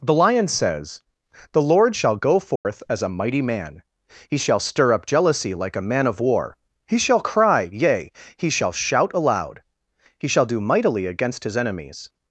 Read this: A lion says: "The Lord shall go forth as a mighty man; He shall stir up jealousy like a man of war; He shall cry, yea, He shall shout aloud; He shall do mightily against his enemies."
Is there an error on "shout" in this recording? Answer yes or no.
no